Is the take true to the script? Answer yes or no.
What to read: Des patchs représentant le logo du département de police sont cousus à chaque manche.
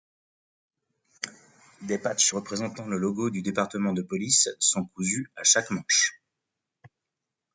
yes